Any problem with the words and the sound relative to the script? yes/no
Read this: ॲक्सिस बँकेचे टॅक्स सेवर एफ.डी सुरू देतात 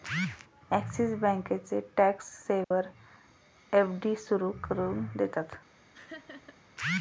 yes